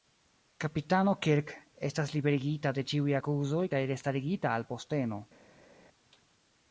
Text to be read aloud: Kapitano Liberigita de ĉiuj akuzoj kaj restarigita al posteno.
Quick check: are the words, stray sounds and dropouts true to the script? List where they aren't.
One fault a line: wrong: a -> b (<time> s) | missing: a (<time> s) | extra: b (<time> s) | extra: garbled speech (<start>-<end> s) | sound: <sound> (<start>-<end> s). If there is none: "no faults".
extra: Kirk estas (1.2 s)